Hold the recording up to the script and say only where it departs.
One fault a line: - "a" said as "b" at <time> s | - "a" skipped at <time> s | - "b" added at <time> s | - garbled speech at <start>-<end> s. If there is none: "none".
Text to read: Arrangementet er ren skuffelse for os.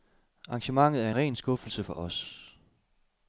none